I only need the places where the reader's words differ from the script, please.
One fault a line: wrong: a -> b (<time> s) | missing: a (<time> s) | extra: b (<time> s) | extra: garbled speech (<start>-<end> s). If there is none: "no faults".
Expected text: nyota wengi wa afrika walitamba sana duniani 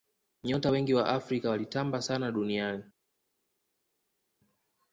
no faults